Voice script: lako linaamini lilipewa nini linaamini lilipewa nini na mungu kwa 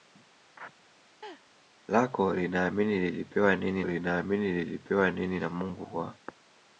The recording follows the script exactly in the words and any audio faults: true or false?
false